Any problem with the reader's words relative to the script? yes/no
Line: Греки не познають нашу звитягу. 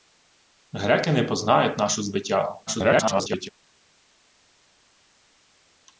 yes